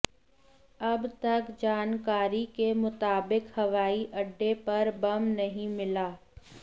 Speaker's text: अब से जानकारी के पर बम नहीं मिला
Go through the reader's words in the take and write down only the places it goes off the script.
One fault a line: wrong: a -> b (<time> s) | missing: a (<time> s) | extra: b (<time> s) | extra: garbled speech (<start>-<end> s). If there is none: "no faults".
wrong: से -> तक (1.2 s)
extra: मुताबिक हवाई अड्डे (2.8 s)